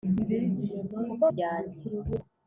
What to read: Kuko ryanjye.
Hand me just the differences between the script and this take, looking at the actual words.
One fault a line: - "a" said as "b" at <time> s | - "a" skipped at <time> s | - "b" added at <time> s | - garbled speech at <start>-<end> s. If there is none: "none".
none